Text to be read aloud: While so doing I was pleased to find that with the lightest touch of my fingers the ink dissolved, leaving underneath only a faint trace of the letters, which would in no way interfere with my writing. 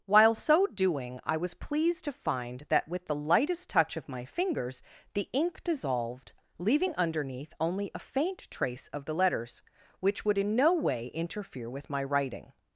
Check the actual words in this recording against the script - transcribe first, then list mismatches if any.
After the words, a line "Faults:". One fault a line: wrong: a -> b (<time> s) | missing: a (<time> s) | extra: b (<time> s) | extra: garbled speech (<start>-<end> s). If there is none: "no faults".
While so doing I was pleased to find that with the lightest touch of my fingers the ink dissolved, leaving underneath only a faint trace of the letters, which would in no way interfere with my writing.
Faults:
no faults